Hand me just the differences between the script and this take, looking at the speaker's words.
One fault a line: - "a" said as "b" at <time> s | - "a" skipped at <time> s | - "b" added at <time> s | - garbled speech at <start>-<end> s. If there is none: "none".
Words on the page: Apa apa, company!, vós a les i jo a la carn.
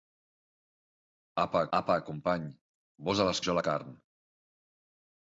none